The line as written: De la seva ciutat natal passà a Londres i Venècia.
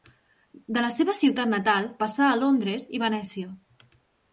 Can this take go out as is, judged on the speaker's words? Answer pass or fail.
pass